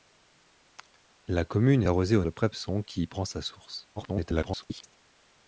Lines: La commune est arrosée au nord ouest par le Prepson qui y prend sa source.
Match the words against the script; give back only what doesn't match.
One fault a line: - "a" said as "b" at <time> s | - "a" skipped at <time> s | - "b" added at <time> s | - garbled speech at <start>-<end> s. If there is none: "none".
- "est" skipped at 1.8 s
- "nord ouest par" skipped at 2.2 s
- garbled speech at 4.0-4.9 s